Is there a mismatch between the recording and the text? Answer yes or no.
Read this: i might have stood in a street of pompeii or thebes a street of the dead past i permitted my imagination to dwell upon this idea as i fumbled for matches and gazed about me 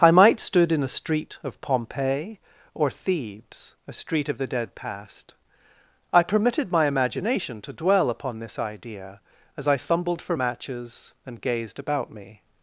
yes